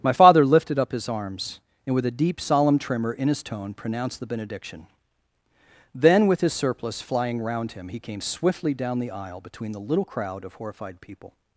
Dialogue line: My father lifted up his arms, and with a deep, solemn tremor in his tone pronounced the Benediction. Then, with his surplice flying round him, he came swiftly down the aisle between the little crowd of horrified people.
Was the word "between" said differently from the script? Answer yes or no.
no